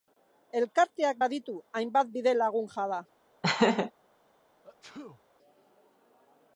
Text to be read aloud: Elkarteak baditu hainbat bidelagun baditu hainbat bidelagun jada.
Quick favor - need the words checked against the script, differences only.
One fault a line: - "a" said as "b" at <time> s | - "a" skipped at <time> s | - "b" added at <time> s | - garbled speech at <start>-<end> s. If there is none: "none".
- "baditu hainbat bidelagun" skipped at 2.7 s